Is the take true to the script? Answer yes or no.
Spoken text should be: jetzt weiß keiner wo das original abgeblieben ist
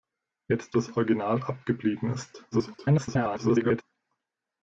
no